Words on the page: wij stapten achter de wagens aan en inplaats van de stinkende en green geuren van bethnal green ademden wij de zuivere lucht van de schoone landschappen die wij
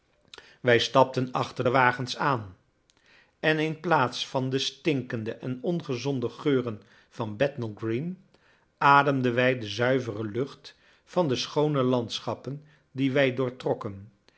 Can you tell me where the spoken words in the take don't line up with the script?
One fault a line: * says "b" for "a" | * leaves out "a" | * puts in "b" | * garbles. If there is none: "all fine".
* says "ongezonde" for "green"